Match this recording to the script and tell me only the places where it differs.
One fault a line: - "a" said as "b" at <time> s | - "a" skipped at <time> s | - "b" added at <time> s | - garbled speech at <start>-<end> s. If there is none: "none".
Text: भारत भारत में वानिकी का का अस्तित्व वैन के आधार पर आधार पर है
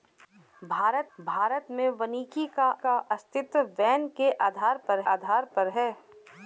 none